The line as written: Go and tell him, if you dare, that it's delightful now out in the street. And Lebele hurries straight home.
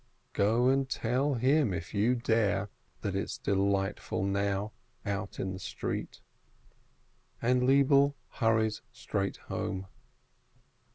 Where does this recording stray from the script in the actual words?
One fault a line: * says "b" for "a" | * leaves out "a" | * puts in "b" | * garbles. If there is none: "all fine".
all fine